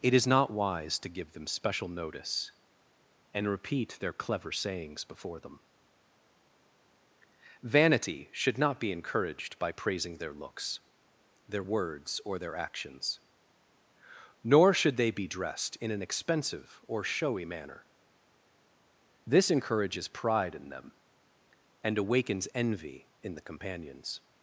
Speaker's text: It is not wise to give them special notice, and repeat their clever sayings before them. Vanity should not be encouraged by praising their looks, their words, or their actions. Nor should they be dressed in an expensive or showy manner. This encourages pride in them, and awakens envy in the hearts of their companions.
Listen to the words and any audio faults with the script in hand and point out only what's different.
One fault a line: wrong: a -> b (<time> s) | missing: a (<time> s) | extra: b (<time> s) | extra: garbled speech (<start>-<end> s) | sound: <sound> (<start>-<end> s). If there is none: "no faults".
missing: hearts of their (23.4 s)